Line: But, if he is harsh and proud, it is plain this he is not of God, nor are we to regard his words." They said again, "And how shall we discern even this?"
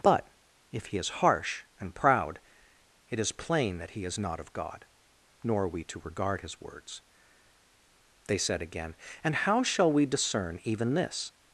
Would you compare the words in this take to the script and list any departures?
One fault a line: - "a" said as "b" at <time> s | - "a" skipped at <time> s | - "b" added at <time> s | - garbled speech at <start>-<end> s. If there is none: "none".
- "this" said as "that" at 3.8 s